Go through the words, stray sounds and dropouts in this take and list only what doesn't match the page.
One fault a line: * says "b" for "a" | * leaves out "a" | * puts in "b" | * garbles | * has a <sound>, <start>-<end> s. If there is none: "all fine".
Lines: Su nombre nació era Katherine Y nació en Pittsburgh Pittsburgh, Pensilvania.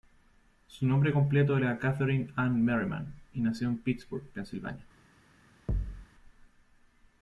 * says "completo" for "nació"
* puts in "Ann Merriman"
* leaves out "Pittsburgh"
* has a thud, 5.7-6.1 s